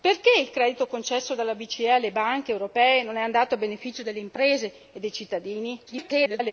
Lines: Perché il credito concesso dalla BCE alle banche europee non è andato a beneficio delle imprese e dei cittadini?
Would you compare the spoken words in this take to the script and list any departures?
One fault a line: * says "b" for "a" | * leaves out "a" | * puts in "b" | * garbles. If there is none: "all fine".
* garbles